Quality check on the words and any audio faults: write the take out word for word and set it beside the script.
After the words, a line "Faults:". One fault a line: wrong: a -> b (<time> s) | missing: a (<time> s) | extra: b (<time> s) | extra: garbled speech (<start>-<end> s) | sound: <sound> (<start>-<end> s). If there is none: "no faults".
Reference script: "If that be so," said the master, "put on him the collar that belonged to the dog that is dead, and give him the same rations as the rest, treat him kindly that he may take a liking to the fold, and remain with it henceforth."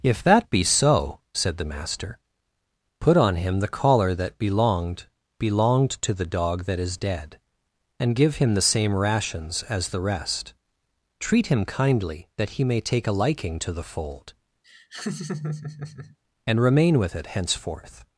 "If that be so," said the master, "put on him the collar that belonged belonged to the dog that is dead, and give him the same rations as the rest, treat him kindly that he may take a liking to the fold, and remain with it henceforth."
Faults:
extra: belonged (5.4 s)
sound: laugh (14.6-16.2 s)